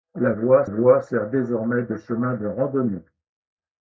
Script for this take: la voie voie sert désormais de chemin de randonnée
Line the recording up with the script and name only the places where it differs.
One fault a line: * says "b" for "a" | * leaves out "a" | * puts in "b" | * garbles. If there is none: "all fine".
all fine